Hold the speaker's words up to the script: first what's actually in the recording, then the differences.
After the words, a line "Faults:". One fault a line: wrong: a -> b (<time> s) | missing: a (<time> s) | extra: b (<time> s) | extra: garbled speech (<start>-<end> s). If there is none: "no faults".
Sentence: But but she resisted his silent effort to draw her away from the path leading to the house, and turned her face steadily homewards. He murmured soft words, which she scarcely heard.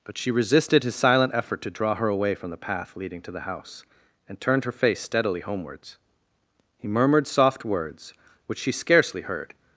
But she resisted his silent effort to draw her away from the path leading to the house, and turned her face steadily homewards. He murmured soft words, which she scarcely heard.
Faults:
missing: but (0.2 s)